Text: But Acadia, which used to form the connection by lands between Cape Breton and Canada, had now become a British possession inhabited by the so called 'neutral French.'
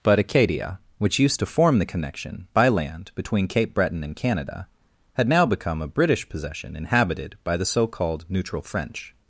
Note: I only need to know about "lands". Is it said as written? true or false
false